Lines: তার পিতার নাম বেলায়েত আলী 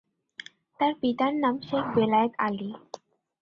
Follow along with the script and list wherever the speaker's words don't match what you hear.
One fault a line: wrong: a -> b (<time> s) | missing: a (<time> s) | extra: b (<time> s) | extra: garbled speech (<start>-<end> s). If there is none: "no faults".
extra: শেখ (1.7 s)